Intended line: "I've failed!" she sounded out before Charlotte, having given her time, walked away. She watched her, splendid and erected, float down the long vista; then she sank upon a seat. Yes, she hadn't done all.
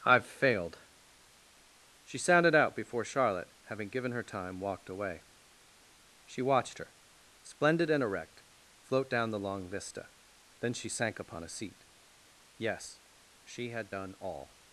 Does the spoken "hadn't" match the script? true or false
false